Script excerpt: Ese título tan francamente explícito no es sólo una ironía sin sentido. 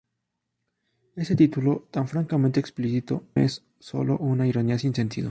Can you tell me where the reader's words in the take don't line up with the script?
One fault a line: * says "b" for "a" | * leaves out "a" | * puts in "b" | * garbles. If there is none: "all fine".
* leaves out "no"